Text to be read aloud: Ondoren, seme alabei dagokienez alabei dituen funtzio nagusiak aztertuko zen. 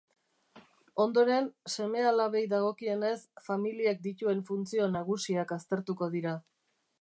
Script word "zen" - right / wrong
wrong